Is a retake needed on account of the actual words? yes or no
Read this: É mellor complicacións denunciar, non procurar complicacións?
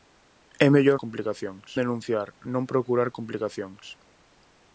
no